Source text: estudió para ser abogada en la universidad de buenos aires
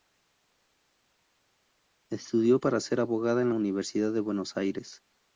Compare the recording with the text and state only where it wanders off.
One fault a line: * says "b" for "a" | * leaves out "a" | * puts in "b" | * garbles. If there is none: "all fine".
all fine